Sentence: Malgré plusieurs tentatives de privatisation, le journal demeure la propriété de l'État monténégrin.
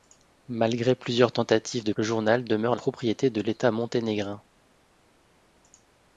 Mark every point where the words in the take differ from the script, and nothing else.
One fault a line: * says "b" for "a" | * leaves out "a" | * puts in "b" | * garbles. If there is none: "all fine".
* leaves out "privatisation"
* leaves out "la"